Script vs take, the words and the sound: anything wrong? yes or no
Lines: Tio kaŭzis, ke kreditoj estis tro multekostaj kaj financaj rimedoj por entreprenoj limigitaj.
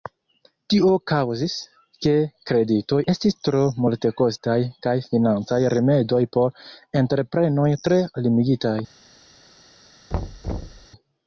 yes